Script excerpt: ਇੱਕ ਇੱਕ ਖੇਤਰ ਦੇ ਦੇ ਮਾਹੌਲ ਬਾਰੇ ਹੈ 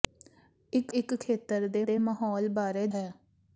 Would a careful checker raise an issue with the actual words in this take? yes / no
no